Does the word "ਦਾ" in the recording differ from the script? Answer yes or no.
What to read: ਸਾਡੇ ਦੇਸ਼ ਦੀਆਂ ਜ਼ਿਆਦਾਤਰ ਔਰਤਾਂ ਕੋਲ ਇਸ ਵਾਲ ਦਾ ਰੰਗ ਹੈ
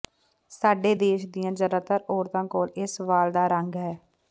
no